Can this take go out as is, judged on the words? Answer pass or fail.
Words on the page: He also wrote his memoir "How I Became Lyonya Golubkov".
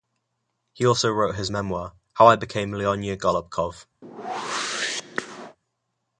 pass